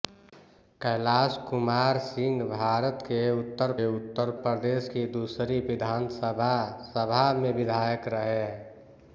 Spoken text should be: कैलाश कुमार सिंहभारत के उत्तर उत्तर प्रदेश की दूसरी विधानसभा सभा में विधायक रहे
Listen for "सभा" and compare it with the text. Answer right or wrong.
right